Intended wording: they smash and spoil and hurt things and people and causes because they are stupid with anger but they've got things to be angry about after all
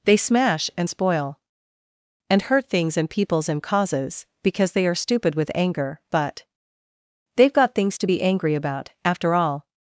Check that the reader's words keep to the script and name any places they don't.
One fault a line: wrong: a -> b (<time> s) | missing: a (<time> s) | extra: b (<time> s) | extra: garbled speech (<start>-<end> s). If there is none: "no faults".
wrong: people -> peoples (3.1 s)